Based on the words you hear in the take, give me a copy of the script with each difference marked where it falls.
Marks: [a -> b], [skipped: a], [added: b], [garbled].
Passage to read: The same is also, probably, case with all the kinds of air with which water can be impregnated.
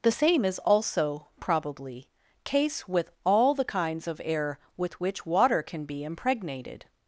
The same is also, probably, case with all the kinds of air with which water can be impregnated.